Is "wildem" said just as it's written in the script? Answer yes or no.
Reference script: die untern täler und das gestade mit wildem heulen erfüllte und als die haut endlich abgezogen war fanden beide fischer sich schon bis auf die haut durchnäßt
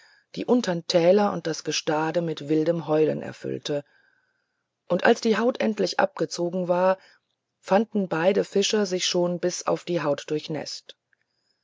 yes